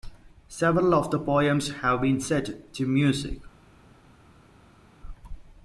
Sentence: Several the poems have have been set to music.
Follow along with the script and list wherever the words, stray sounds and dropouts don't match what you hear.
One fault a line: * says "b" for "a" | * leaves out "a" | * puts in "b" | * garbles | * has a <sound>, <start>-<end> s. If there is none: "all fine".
* puts in "of"
* leaves out "have"